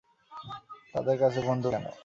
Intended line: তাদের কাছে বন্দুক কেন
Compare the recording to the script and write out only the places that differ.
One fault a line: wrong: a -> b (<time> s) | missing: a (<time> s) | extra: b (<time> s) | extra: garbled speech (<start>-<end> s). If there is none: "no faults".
no faults